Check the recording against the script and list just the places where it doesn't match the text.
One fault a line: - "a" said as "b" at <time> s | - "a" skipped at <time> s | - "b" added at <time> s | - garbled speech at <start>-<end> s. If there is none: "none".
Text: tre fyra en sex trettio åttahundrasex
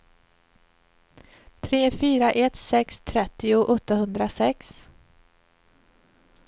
- "en" said as "ett" at 2.3 s